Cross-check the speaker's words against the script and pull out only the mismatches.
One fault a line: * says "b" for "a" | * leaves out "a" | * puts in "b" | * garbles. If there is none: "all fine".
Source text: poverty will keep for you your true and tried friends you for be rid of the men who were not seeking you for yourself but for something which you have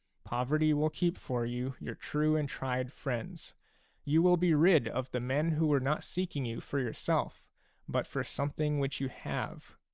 * says "will" for "for"